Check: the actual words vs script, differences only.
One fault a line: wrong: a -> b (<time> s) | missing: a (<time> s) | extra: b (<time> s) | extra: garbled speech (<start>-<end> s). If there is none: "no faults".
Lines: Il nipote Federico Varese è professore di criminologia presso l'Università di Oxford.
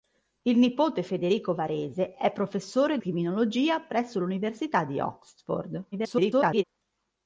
missing: di (3.0 s)
extra: garbled speech (5.9-6.6 s)